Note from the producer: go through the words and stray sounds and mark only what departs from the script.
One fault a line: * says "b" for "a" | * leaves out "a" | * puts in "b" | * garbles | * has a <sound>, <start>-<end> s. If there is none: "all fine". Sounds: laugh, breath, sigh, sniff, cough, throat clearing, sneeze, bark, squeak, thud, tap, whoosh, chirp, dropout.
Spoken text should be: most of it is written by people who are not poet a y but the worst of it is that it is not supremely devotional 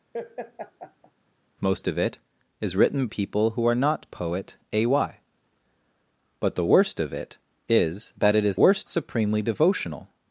* has a laugh, 0.1-1.1 s
* leaves out "by"
* says "worst" for "not"